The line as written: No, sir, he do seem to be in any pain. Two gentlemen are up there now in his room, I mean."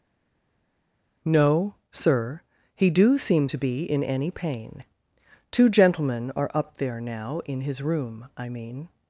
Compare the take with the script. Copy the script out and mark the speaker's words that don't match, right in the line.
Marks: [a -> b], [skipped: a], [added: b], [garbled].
No, sir, he do seem to be in any pain. Two gentlemen are up there now in his room, I mean."